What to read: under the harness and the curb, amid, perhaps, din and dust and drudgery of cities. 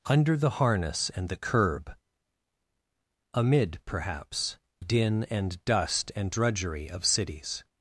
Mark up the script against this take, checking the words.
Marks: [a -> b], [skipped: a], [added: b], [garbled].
under the harness and the curb, amid, perhaps, din and dust and drudgery of cities.